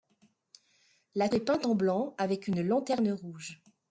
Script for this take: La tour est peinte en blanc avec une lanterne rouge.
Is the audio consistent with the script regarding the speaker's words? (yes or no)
no